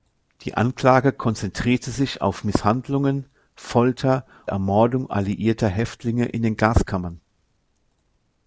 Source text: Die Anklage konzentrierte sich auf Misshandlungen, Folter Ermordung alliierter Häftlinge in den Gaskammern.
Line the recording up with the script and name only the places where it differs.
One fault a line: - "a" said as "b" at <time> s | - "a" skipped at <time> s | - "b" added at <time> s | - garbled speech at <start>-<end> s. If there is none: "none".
none